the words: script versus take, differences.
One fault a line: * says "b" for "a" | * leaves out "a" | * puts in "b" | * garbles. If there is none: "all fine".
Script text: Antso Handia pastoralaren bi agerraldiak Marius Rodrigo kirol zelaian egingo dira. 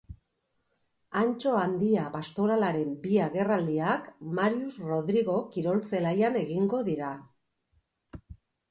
all fine